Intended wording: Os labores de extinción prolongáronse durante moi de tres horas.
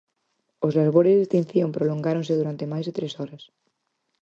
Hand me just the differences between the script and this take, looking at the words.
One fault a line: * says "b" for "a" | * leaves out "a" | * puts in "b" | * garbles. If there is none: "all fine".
* says "máis" for "moi"